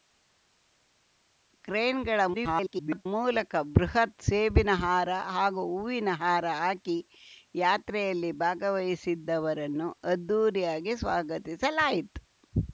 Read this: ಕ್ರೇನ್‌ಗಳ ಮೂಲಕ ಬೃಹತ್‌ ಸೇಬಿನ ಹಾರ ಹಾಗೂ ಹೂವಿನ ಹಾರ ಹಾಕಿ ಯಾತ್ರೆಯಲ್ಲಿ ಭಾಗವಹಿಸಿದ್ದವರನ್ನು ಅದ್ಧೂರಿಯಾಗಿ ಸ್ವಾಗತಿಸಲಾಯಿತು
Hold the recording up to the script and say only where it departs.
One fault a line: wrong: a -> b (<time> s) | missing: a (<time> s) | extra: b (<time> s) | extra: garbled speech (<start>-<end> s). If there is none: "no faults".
extra: garbled speech (2.3-3.1 s)